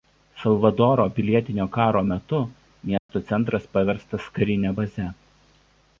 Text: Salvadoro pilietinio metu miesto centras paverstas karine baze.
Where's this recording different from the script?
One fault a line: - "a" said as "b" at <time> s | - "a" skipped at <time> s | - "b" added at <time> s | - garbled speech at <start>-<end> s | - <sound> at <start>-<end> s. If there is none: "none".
- "karo" added at 1.8 s
- dropout at 3.0-3.1 s